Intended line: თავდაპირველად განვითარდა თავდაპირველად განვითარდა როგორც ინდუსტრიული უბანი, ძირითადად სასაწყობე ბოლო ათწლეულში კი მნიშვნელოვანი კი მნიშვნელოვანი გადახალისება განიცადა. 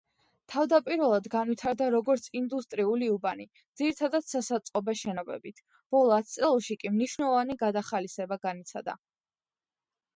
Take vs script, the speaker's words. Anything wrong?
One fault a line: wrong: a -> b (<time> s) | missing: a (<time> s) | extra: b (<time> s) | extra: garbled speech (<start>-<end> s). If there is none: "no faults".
missing: თავდაპირველად განვითარდა (1.9 s)
extra: შენობებით (5.0 s)
missing: კი მნიშვნელოვანი (7.6 s)